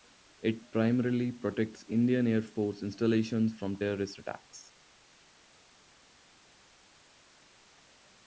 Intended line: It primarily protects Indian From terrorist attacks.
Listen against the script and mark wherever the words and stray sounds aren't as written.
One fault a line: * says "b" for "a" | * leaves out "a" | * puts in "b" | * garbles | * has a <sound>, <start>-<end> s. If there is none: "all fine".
* puts in "Air Force installations"